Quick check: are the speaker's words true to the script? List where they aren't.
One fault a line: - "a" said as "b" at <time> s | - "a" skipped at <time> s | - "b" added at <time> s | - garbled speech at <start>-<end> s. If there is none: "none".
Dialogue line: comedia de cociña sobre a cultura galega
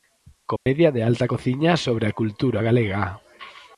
- "alta" added at 1.0 s